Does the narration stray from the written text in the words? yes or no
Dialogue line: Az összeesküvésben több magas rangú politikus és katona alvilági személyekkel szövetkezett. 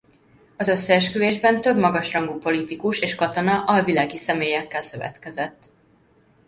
no